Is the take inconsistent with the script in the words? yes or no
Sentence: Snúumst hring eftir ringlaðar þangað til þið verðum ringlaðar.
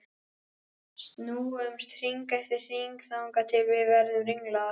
yes